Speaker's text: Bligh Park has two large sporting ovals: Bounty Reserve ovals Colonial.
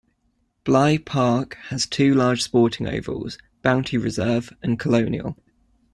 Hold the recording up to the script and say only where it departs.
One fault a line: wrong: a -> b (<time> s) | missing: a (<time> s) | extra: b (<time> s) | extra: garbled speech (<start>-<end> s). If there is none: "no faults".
wrong: ovals -> and (4.6 s)